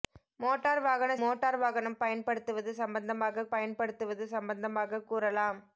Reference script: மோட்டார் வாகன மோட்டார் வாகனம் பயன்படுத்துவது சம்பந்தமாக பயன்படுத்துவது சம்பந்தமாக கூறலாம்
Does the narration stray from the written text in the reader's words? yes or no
no